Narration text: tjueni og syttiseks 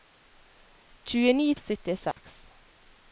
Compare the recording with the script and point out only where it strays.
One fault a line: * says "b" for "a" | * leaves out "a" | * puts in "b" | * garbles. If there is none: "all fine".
all fine